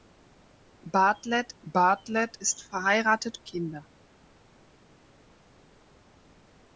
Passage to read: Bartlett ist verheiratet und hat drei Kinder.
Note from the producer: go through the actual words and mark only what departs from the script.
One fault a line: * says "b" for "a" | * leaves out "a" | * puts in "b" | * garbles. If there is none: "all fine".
* puts in "bartlett"
* leaves out "und hat drei"